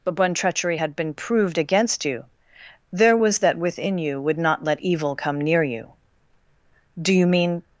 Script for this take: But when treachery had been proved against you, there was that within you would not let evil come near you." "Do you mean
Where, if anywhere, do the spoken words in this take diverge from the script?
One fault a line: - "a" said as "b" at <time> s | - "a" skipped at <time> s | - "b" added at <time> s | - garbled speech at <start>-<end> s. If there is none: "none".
none